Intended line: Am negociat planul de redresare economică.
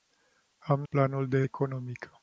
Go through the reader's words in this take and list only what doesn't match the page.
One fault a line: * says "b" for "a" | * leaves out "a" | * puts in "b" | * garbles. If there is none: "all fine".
* leaves out "negociat"
* leaves out "redresare"